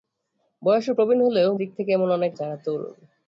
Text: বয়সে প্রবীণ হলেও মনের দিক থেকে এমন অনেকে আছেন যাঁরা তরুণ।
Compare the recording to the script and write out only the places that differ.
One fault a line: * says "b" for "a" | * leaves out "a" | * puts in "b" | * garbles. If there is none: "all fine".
* leaves out "মনের"
* leaves out "আছেন"